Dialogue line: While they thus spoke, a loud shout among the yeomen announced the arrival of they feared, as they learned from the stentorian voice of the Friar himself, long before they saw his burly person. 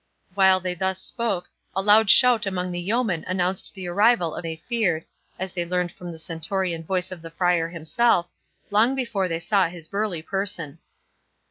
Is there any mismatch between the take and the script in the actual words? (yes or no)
no